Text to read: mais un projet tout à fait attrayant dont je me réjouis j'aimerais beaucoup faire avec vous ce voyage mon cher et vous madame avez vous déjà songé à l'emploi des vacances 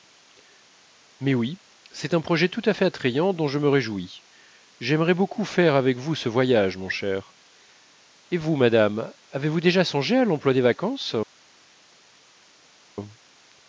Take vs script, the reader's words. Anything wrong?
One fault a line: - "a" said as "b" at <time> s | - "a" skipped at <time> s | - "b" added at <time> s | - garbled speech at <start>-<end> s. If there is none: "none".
- "oui c'est" added at 1.4 s